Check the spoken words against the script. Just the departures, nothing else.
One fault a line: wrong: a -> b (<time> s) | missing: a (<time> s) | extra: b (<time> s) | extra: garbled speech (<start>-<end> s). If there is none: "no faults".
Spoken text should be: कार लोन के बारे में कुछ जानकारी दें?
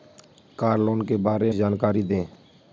missing: में कुछ (1.5 s)